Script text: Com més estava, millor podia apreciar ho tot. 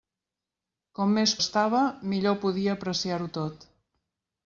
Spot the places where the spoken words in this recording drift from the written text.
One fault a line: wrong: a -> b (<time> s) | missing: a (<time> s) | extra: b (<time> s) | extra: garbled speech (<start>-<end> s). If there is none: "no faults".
no faults